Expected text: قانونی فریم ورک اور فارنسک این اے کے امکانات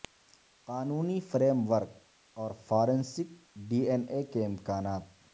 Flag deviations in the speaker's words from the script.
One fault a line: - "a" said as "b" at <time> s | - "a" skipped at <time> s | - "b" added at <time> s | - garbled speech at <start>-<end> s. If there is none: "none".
- "ڈی" added at 3.7 s